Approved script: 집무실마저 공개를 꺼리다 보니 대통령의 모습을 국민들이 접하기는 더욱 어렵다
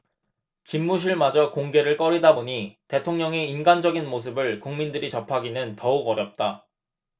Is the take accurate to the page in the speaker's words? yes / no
no